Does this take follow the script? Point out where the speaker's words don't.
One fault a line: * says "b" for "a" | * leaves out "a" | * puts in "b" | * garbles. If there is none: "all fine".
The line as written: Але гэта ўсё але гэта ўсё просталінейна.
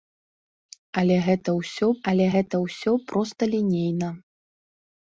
all fine